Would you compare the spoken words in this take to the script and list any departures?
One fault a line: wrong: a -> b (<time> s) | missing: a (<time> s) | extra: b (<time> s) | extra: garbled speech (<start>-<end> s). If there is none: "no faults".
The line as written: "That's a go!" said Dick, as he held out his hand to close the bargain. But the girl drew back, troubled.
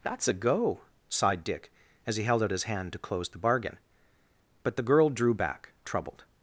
wrong: said -> sighed (1.1 s)